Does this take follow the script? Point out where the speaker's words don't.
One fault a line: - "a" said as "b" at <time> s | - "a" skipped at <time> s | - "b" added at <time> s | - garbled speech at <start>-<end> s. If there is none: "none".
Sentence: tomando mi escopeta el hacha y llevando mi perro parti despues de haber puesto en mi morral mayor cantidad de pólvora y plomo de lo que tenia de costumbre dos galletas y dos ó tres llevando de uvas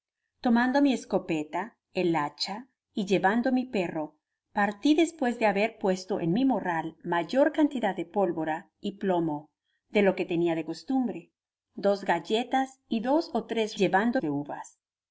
none